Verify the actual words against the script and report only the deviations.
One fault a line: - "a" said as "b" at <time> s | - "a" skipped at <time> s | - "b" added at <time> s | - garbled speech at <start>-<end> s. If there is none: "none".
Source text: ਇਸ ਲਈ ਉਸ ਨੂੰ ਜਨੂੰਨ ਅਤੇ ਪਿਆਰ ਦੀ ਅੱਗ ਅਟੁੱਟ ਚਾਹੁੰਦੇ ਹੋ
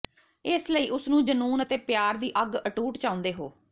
none